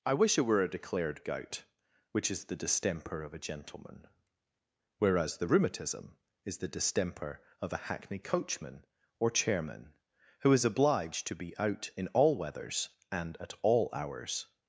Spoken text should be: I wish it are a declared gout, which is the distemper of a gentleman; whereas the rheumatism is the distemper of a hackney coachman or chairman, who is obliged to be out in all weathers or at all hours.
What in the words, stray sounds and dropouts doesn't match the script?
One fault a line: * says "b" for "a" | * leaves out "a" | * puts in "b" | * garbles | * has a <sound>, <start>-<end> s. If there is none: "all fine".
* says "were" for "are"
* says "and" for "or"